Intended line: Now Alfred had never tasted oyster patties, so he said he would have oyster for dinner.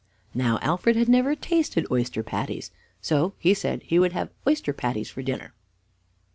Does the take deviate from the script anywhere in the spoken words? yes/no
yes